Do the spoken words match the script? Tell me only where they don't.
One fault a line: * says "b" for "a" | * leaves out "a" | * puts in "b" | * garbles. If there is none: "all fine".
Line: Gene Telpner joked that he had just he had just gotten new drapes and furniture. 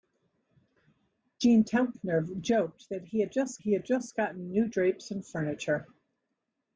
all fine